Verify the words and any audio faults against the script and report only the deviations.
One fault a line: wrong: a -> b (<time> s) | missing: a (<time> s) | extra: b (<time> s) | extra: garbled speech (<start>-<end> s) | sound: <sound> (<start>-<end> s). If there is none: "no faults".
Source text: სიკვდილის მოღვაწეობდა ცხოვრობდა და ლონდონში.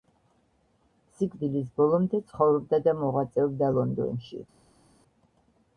wrong: მოღვაწეობდა -> ბოლომდე (1.8 s)
extra: მოღვაწეობდა (3.0 s)